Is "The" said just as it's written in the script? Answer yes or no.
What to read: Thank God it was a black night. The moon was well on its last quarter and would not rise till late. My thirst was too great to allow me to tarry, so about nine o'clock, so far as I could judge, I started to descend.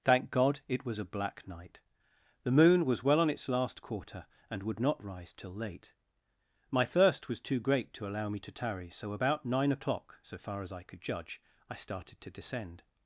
yes